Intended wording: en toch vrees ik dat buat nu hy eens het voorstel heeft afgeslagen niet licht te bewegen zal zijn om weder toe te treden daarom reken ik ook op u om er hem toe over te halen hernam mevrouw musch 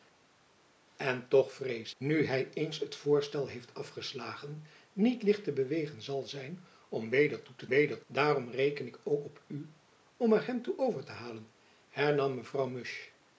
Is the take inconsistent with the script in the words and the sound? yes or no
yes